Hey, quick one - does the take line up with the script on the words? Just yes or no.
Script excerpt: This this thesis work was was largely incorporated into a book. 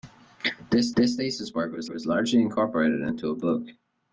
yes